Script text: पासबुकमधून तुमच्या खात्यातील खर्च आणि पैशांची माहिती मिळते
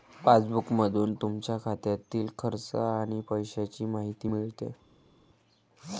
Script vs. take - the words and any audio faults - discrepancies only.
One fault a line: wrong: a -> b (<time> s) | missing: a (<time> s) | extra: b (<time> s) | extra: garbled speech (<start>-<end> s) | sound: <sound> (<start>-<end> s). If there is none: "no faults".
no faults